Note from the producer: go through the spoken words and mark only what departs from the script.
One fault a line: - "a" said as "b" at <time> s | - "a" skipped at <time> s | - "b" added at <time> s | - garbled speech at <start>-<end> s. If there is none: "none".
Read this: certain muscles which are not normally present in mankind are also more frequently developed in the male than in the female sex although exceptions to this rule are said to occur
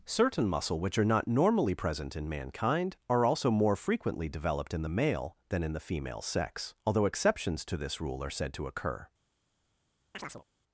- "muscles" said as "muscle" at 0.5 s